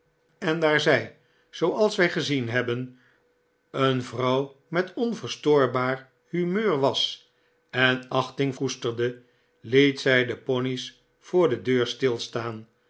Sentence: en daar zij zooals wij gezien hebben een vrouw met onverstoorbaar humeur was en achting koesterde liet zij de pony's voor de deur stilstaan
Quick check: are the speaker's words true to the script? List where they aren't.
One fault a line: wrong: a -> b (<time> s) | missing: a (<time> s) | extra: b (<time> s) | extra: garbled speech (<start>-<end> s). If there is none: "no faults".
no faults